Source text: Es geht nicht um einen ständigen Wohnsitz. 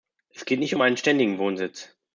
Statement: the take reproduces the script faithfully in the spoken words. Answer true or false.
true